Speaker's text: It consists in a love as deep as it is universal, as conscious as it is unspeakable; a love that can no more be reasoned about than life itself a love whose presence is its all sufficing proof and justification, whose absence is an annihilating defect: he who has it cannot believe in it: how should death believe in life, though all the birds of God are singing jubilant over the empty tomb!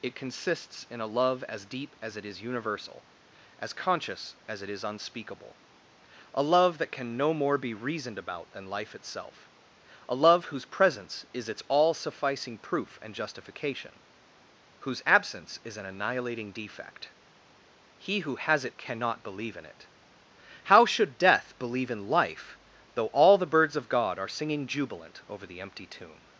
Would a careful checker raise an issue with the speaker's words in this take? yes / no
no